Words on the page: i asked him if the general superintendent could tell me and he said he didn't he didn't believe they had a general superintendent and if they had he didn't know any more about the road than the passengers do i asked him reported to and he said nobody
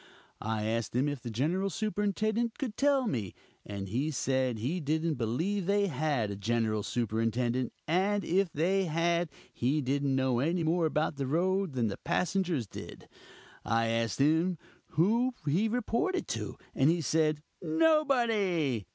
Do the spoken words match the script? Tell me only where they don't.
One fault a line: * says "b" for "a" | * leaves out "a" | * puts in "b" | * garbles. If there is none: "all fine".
* leaves out "he didn't"
* says "did" for "do"
* puts in "who he"